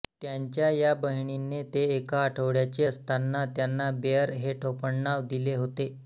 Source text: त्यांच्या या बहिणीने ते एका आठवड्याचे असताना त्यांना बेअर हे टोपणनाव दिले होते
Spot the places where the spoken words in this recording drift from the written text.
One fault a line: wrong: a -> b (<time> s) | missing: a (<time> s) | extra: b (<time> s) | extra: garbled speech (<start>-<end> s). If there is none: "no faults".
no faults